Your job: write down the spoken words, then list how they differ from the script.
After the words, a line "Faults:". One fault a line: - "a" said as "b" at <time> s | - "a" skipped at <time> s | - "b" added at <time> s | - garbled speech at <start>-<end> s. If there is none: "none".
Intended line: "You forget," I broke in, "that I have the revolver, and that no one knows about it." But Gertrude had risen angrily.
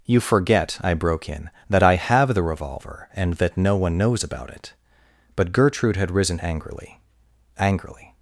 "You forget," I broke in, "that I have the revolver, and that no one knows about it." But Gertrude had risen angrily angrily.
Faults:
- "angrily" added at 7.6 s